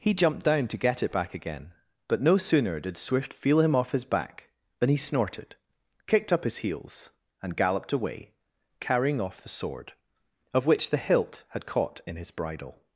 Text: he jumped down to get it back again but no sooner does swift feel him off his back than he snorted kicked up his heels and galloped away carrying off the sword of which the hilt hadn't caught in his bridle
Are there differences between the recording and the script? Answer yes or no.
yes